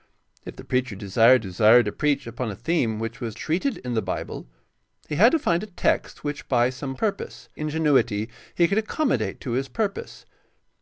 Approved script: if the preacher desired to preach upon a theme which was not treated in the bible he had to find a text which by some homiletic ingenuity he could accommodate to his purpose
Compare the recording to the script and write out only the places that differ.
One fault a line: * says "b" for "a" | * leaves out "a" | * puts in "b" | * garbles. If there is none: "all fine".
* puts in "desired"
* leaves out "not"
* says "purpose" for "homiletic"